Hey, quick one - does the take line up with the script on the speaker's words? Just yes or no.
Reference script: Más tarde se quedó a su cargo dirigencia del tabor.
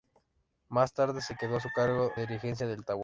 yes